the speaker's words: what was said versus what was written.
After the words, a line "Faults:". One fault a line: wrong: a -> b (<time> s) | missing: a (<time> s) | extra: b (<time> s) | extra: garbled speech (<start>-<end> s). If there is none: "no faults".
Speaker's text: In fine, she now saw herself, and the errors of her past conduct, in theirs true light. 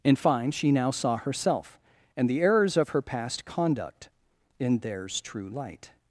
In fine, she now saw herself, and the errors of her past conduct, in theirs true light.
Faults:
no faults